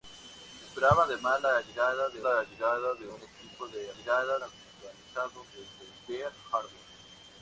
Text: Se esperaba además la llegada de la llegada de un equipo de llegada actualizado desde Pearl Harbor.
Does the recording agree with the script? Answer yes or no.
yes